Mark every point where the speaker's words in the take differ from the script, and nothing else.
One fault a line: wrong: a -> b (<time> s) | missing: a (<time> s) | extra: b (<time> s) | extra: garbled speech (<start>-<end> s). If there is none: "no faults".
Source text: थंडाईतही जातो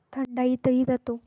no faults